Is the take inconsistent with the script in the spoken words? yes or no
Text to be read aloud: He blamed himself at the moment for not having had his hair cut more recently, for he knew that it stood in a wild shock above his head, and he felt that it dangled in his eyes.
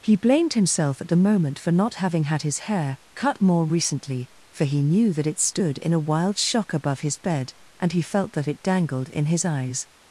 yes